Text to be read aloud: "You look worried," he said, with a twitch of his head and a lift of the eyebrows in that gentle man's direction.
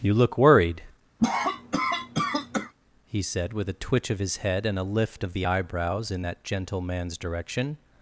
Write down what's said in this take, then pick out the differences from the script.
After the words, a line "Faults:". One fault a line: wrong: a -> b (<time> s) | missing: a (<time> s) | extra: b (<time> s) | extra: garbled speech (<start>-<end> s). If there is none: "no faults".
"You look worried," he said, with a twitch of his head and a lift of the eyebrows in that gentle man's direction.
Faults:
no faults